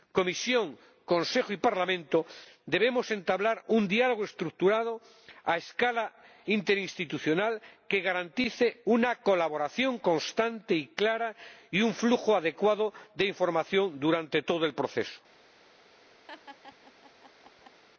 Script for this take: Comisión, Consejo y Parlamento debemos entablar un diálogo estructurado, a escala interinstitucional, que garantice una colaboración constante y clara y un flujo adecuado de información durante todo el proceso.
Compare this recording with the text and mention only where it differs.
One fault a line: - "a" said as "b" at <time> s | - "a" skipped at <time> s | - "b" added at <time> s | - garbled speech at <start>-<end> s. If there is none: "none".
none